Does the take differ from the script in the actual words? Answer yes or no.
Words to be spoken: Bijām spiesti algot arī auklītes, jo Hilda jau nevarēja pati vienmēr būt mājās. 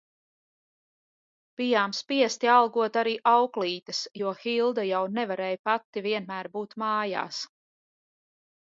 no